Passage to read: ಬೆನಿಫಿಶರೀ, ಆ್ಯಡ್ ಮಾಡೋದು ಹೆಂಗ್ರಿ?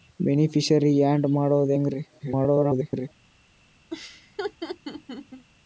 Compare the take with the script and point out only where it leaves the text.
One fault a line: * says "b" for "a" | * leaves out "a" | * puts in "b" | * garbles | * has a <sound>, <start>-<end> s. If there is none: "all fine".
* garbles
* has a laugh, 3.9-5.5 s